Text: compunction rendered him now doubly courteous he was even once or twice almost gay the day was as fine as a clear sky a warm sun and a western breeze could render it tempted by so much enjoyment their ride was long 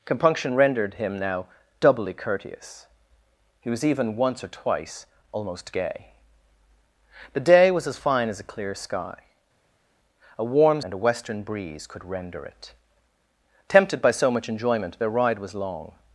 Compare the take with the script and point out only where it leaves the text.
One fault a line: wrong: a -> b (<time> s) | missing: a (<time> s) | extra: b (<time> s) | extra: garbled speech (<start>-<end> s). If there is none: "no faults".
missing: sun (10.8 s)